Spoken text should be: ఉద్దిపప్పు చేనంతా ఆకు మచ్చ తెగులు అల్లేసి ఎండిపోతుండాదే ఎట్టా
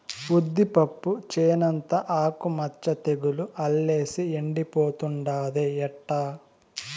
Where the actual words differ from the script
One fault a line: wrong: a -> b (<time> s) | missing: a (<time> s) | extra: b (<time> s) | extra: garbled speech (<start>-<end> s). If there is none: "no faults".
no faults